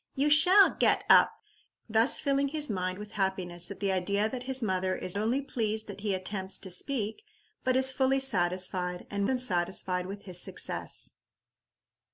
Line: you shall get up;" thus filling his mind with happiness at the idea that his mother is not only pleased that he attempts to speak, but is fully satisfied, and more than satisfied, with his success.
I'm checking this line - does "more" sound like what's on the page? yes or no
no